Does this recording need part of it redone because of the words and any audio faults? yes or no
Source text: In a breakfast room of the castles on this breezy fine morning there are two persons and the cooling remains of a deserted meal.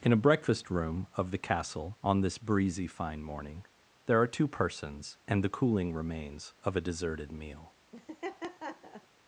yes